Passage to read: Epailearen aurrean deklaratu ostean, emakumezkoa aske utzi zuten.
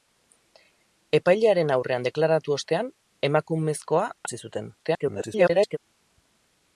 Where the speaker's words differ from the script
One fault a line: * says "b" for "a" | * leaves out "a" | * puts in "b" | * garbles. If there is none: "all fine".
* leaves out "aske"
* garbles